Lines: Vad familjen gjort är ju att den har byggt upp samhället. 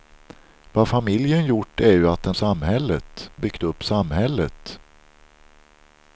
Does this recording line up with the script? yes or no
no